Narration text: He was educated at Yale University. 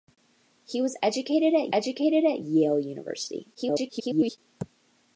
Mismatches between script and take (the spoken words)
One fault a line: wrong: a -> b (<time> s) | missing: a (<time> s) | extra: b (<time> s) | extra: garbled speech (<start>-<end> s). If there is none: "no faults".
extra: educated at (1.7 s)
extra: garbled speech (3.5-4.4 s)